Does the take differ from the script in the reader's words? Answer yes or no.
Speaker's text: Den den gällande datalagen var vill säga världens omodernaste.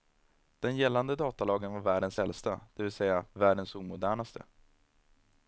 yes